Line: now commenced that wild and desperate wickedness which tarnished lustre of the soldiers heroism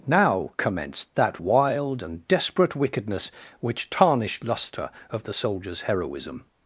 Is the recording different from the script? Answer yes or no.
no